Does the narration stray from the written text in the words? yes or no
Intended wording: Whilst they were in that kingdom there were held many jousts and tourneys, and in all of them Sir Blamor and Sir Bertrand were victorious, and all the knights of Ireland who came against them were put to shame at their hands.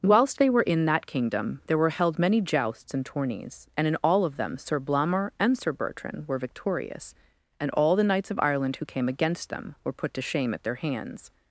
no